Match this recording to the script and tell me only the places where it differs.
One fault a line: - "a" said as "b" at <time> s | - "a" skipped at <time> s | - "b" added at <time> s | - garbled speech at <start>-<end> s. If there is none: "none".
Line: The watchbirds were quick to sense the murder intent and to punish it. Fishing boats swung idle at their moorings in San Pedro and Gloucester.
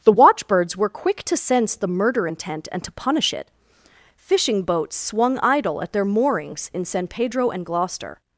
none